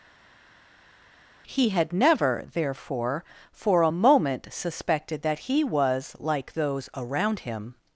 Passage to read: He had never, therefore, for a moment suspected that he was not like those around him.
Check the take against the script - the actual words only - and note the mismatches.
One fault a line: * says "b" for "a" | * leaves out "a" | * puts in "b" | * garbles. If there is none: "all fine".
* leaves out "not"